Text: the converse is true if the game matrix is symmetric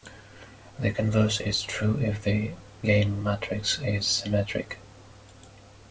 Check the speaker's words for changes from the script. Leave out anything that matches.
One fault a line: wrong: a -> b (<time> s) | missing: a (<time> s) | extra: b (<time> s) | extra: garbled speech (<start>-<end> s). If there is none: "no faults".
no faults